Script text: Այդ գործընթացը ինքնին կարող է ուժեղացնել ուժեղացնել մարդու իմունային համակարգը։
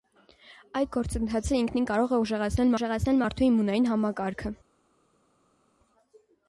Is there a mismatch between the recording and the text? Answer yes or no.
no